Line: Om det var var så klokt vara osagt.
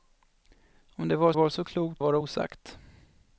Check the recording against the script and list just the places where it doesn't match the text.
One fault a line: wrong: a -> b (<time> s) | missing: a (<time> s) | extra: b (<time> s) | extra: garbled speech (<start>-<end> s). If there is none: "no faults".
no faults